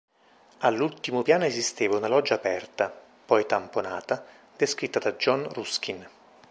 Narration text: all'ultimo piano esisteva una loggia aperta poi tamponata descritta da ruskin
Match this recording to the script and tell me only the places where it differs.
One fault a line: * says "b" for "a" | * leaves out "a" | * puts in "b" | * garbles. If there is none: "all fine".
* puts in "john"